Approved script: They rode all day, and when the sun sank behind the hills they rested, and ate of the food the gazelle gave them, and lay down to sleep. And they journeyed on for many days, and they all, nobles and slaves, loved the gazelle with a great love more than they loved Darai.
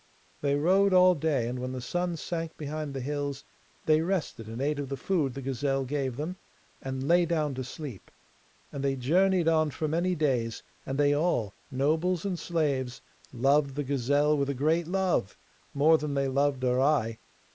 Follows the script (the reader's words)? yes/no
yes